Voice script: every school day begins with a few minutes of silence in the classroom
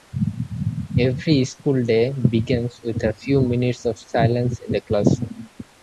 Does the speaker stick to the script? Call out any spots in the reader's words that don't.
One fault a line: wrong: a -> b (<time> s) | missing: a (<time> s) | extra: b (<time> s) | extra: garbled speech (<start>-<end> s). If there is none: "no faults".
no faults